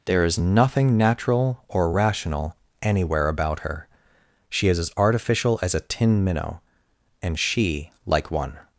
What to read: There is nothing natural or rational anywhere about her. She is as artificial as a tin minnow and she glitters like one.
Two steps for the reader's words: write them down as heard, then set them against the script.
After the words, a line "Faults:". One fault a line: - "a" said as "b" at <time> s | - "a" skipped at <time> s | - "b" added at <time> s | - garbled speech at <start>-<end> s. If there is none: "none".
There is nothing natural or rational anywhere about her. She is as artificial as a tin minnow and she like one.
Faults:
- "glitters" skipped at 7.9 s